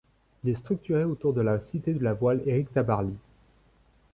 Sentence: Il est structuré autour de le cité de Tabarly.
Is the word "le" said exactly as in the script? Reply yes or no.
no